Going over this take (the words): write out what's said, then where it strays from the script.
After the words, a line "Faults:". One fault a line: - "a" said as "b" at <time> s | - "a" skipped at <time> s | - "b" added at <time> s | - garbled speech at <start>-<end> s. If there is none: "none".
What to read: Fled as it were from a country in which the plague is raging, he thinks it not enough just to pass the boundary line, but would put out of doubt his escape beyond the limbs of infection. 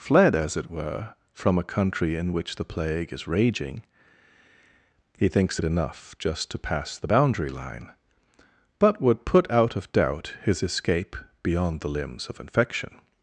Fled as it were from a country in which the plague is raging, he thinks it enough just to pass the boundary line, but would put out of doubt his escape beyond the limbs of infection.
Faults:
- "not" skipped at 5.6 s